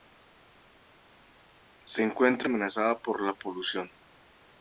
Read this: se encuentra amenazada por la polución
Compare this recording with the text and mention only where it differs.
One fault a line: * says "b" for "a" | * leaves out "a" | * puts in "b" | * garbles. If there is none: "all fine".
all fine